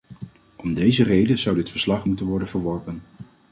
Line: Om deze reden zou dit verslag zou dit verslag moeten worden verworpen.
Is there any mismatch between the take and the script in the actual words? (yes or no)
yes